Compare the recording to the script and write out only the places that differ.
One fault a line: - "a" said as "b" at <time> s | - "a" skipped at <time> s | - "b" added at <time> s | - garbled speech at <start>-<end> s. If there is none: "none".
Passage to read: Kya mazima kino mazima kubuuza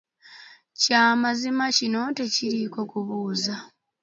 - "mazima" said as "tekiriiko" at 2.2 s